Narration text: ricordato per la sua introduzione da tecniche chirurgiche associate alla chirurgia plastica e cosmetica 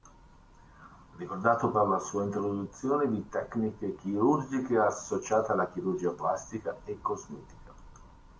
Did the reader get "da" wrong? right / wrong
wrong